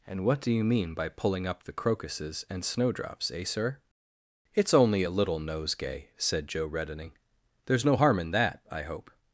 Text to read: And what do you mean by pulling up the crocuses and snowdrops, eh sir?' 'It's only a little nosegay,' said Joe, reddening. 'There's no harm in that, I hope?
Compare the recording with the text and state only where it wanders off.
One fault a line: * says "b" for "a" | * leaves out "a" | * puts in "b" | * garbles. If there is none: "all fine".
all fine